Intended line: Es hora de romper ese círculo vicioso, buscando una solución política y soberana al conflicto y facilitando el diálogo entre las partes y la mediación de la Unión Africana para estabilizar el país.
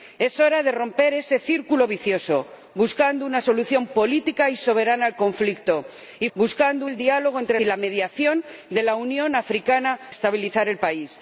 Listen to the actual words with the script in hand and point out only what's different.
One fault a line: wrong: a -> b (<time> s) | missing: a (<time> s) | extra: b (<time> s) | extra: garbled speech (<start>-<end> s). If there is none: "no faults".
wrong: facilitando -> buscando (6.4 s)
missing: las partes (7.6 s)
missing: para (10.0 s)